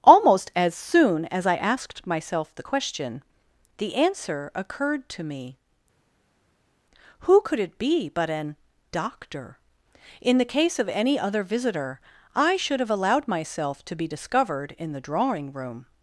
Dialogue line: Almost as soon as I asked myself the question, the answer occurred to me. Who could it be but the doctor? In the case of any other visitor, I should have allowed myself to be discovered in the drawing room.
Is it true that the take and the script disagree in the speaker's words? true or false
true